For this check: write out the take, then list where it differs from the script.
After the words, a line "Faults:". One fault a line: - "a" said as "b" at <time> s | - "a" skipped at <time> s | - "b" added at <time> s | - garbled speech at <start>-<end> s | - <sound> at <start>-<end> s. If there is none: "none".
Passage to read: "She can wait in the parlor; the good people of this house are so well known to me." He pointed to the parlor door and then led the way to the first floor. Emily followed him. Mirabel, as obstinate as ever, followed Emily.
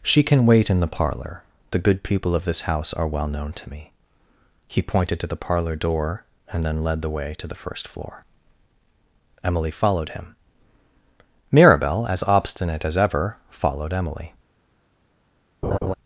"She can wait in the parlor; the good people of this house are well known to me." He pointed to the parlor door and then led the way to the first floor. Emily followed him. Mirabel, as obstinate as ever, followed Emily.
Faults:
- "so" skipped at 3.1 s
- laugh at 15.6-15.9 s